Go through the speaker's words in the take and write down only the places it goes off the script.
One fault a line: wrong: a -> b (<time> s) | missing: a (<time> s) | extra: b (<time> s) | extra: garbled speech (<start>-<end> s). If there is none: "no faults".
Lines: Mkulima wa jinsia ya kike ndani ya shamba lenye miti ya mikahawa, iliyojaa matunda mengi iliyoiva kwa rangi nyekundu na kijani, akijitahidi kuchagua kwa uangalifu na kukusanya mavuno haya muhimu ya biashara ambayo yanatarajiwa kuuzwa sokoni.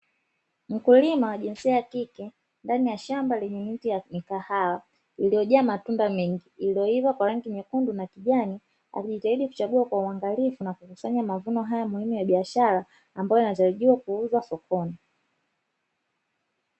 no faults